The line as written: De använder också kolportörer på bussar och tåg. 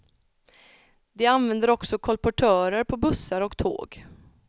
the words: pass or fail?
pass